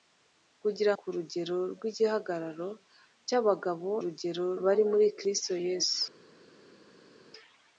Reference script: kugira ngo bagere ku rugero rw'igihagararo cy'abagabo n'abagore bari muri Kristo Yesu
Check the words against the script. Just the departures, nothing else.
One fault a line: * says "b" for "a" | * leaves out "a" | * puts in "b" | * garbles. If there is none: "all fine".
* leaves out "ngo bagere"
* says "rugero" for "n'abagore"